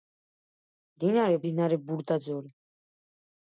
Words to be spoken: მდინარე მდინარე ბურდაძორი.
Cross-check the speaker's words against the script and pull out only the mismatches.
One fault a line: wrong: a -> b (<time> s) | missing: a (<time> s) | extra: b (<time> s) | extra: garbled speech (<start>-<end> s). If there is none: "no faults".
no faults